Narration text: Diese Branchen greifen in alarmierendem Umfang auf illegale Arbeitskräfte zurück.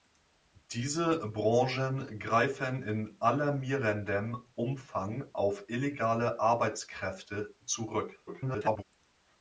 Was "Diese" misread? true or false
false